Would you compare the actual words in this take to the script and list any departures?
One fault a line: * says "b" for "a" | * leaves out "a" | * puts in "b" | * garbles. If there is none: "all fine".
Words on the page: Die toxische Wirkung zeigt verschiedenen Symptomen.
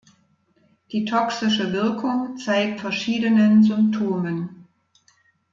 all fine